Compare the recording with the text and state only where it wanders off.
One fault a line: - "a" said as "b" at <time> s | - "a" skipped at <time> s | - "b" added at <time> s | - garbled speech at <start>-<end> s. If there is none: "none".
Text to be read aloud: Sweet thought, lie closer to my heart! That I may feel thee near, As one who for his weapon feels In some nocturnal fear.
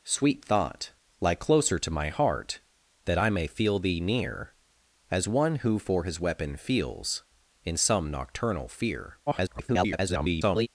- garbled speech at 9.3-10.7 s